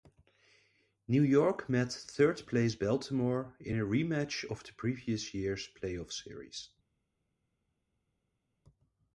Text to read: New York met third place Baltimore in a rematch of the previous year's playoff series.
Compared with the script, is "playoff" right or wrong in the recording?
right